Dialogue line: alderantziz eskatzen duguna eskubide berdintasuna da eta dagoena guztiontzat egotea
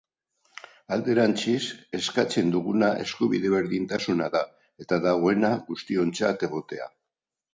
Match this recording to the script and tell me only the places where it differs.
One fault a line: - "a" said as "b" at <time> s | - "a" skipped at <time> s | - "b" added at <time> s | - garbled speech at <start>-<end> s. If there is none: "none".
none